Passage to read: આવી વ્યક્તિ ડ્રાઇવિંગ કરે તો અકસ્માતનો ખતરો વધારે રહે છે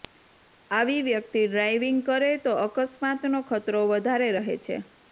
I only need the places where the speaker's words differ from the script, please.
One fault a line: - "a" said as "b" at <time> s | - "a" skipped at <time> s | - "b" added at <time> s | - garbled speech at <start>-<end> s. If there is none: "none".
none